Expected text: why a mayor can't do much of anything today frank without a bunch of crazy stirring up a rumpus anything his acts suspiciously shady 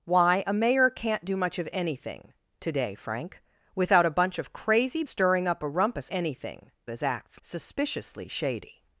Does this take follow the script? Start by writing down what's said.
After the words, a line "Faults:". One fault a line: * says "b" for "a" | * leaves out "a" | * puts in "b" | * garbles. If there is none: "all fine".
why a mayor can't do much of anything today frank without a bunch of crazy stirring up a rumpus anything his acts suspiciously shady
Faults:
all fine